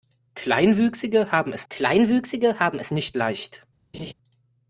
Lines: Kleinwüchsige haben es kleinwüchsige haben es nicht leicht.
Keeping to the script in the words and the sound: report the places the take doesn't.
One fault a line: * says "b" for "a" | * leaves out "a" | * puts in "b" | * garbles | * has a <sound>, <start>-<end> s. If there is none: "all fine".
* has a laugh, 3.9-4.1 s